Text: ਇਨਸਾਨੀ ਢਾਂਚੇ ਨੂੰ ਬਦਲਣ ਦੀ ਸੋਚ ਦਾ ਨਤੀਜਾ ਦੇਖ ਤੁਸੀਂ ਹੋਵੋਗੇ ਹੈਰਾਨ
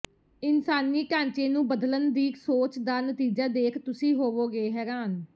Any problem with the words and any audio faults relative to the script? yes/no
no